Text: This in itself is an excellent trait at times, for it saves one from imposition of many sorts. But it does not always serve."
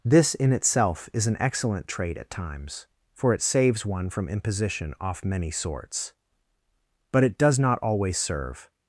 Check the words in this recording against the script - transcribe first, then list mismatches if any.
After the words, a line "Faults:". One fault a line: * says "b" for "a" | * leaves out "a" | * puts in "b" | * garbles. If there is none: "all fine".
This in itself is an excellent trait at times, for it saves one from imposition off many sorts. But it does not always serve."
Faults:
* says "off" for "of"